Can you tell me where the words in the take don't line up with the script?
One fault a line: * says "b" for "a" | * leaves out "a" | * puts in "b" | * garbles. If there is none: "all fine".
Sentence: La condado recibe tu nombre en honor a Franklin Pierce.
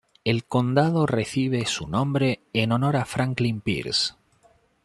* says "El" for "La"
* says "su" for "tu"